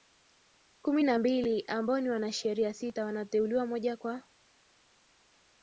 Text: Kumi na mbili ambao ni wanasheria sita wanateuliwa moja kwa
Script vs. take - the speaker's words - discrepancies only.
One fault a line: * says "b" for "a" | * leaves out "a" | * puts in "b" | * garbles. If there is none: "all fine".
all fine